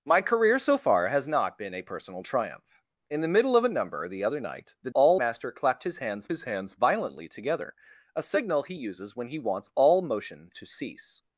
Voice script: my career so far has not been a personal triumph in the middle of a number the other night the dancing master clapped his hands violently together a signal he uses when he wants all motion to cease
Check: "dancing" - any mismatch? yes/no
yes